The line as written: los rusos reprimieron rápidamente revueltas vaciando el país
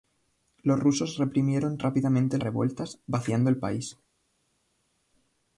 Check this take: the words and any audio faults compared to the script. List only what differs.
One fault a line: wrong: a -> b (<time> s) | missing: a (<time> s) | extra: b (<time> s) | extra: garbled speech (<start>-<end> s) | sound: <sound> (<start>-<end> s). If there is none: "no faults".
no faults